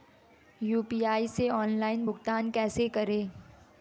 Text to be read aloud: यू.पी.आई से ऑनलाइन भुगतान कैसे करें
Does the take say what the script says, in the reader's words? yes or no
yes